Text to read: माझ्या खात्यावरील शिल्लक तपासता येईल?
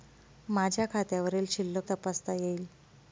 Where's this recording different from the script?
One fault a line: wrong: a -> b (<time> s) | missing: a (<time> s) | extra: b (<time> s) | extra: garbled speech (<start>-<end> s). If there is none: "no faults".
no faults